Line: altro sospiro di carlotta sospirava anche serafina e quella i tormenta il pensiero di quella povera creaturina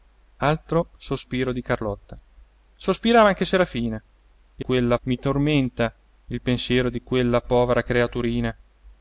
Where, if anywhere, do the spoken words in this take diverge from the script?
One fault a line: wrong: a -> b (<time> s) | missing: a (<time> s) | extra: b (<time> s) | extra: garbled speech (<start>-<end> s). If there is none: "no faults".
no faults